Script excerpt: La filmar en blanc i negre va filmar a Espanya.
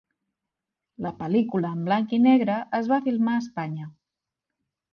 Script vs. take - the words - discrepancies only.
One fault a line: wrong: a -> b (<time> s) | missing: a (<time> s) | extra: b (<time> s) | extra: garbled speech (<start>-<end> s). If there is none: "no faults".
wrong: filmar -> pel·lícula (1.2 s)
extra: es (2.8 s)